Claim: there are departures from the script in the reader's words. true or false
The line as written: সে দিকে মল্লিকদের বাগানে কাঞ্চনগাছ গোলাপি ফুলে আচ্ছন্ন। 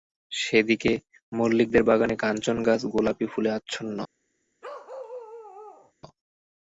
false